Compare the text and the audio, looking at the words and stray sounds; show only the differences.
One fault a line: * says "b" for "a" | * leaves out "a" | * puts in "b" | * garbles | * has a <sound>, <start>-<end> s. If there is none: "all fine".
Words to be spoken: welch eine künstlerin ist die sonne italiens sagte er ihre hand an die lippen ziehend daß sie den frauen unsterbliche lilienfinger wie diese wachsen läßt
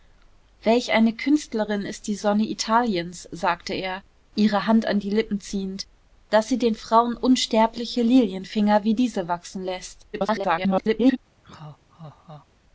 * garbles
* has a laugh, 11.4-12.5 s